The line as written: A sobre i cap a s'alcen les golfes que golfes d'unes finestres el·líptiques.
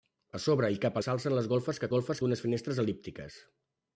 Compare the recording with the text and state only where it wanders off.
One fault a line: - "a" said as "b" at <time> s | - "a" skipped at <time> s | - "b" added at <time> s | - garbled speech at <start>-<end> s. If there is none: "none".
none